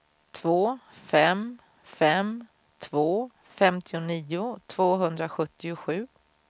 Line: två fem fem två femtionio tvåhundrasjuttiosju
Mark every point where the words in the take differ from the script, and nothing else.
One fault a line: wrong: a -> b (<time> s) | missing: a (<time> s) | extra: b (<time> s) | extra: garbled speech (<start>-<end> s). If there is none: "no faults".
no faults